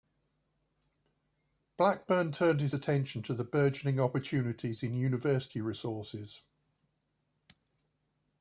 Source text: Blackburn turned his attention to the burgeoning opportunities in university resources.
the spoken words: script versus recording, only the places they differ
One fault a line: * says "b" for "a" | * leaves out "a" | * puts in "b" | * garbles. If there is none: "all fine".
all fine